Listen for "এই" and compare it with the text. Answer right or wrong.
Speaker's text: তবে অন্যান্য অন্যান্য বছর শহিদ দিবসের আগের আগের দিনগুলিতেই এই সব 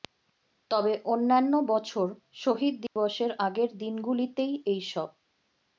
right